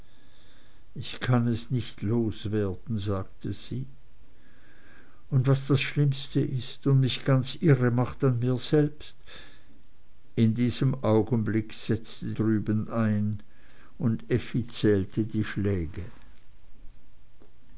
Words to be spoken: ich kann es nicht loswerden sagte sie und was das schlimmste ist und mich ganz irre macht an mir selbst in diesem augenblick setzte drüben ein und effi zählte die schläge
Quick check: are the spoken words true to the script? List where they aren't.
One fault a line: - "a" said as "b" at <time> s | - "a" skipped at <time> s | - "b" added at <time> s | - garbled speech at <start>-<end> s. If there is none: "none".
none